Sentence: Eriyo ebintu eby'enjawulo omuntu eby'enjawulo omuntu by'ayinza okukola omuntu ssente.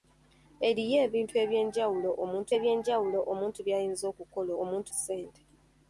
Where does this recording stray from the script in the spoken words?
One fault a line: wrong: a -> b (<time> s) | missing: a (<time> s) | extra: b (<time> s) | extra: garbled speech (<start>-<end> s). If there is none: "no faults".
no faults